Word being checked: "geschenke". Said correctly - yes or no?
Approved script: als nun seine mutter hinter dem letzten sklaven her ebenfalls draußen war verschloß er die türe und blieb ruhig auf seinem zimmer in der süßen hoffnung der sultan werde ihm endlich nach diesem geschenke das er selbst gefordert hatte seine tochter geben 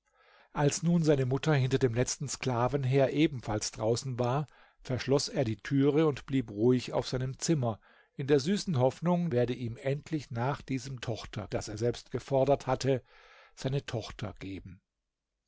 no